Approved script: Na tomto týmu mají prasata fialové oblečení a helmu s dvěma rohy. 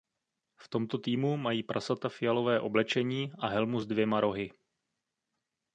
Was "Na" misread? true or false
true